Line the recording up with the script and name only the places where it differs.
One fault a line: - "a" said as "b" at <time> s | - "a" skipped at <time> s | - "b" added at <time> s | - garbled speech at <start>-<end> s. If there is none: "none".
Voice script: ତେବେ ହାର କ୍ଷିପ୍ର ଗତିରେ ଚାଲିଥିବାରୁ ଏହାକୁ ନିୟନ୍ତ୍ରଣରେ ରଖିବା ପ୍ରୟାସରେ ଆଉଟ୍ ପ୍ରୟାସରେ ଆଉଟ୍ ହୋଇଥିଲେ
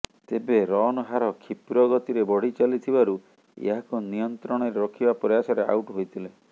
- "ରନ୍" added at 0.7 s
- "ବଢ଼ି" added at 2.3 s
- "ପ୍ରୟାସରେ ଆଉଟ୍" skipped at 6.0 s